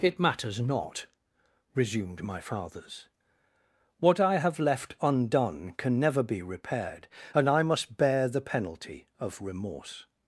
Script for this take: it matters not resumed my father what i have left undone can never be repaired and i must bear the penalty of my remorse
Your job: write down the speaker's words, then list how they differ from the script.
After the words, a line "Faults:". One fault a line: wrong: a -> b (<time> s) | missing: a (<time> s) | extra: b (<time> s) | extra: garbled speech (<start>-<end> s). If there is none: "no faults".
it matters not resumed my fathers what i have left undone can never be repaired and i must bear the penalty of remorse
Faults:
wrong: father -> fathers (2.4 s)
missing: my (9.4 s)